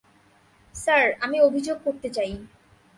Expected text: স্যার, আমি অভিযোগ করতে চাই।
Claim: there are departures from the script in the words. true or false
false